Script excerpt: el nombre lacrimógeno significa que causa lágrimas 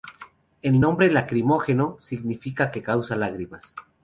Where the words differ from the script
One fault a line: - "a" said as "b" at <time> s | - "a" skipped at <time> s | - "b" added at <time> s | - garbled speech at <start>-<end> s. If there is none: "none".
none